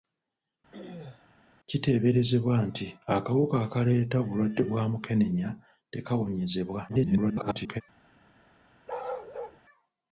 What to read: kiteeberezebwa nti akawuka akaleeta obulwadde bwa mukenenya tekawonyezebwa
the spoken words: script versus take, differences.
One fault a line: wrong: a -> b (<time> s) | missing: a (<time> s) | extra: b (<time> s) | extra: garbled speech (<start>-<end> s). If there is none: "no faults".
extra: garbled speech (6.9-7.8 s)